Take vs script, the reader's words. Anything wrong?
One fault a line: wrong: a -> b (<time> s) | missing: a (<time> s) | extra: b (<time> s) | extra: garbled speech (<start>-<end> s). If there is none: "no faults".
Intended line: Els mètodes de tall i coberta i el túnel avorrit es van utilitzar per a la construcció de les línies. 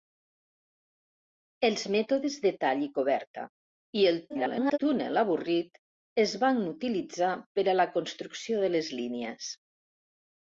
extra: garbled speech (4.3-4.8 s)